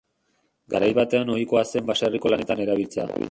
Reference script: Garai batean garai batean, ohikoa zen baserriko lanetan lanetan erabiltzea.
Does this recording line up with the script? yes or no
no